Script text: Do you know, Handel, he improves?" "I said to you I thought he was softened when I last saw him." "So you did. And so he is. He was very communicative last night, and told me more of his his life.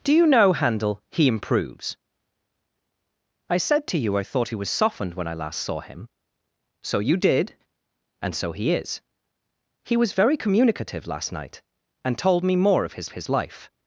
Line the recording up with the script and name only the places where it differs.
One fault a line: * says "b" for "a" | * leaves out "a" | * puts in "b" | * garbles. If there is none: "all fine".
all fine